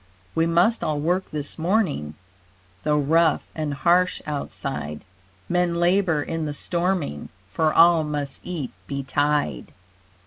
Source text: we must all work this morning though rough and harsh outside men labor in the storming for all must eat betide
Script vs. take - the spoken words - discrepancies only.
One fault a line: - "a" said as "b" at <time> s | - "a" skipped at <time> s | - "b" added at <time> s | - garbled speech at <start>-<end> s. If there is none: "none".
none